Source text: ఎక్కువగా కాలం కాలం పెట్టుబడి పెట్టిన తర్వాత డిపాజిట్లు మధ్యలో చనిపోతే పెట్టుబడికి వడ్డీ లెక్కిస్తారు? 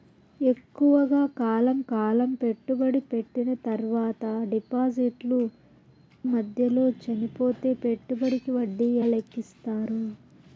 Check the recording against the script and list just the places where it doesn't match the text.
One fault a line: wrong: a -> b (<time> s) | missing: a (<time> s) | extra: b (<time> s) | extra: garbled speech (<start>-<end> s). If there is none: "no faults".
no faults